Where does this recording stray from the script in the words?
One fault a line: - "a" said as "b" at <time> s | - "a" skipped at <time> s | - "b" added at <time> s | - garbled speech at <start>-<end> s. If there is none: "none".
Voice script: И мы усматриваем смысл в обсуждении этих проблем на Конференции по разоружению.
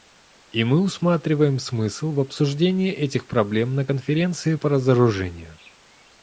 none